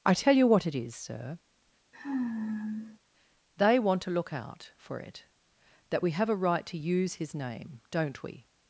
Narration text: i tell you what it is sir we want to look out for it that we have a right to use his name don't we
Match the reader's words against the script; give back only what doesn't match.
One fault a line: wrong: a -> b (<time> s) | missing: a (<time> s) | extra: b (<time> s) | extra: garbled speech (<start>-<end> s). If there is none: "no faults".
wrong: we -> they (3.6 s)